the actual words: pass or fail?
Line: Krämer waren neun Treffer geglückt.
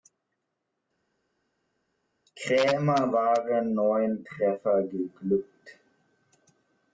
pass